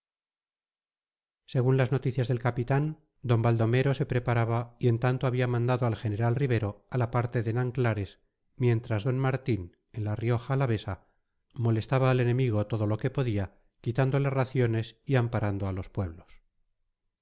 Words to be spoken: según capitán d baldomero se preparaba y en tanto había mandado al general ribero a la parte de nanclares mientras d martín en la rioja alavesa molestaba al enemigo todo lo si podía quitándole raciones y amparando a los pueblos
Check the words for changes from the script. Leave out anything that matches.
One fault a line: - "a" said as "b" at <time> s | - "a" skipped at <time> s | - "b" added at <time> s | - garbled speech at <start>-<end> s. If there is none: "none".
- "las noticias del" added at 1.8 s
- "si" said as "que" at 13.0 s